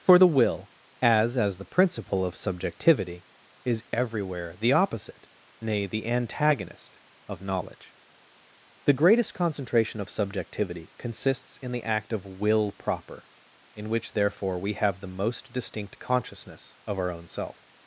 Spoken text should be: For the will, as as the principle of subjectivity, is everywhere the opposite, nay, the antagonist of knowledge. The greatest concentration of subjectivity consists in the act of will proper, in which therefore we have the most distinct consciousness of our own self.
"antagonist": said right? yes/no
yes